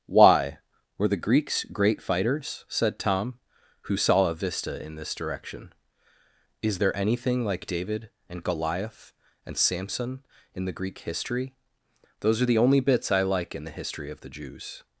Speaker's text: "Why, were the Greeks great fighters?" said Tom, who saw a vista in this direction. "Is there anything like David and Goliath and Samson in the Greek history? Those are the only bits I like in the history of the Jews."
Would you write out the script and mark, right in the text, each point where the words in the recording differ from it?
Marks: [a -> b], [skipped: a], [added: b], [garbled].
"Why, were the Greeks great fighters?" said Tom, who saw a vista in this direction. "Is there anything like David and Goliath and Samson in the Greek history? Those are the only bits I like in the history of the Jews."